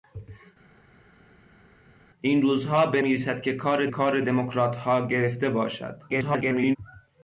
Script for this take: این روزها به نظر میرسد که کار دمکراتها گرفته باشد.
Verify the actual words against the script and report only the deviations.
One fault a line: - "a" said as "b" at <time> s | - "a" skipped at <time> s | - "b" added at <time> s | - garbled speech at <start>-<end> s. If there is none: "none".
- "نظر" skipped at 3.0 s
- "کار" added at 3.9 s
- garbled speech at 6.1-6.8 s